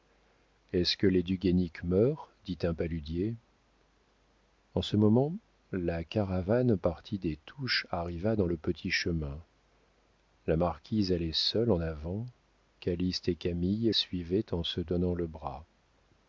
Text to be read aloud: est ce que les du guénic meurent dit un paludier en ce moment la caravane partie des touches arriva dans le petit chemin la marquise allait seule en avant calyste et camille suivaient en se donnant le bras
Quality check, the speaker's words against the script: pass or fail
pass